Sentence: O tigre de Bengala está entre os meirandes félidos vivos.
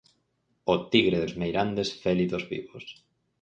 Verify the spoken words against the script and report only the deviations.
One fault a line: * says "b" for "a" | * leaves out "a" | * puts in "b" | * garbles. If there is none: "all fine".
* leaves out "Bengala está entre"